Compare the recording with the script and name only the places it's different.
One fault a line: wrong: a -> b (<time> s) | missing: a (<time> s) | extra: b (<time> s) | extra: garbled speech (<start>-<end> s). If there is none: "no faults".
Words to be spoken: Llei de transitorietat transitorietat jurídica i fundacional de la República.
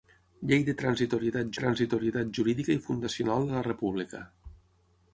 no faults